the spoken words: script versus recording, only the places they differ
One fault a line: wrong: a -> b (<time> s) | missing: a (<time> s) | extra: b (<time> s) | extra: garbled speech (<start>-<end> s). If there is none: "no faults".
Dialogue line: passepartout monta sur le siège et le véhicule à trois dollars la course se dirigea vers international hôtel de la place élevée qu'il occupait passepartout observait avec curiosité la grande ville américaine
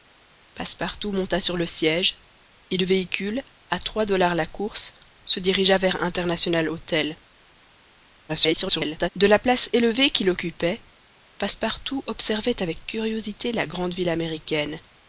extra: garbled speech (8.3-9.1 s)